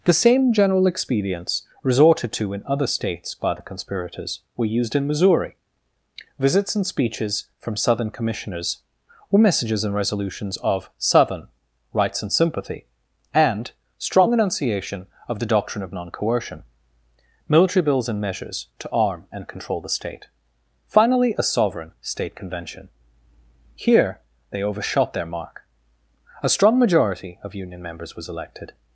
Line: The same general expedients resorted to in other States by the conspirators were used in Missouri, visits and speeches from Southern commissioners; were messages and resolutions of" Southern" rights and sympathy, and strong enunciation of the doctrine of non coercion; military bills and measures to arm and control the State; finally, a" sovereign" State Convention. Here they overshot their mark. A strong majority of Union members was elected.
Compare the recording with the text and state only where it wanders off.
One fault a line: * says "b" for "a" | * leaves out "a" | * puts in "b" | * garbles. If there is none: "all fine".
all fine